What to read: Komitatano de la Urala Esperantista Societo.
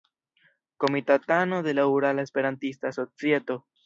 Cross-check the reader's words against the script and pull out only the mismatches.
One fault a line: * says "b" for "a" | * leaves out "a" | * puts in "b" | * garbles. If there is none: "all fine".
all fine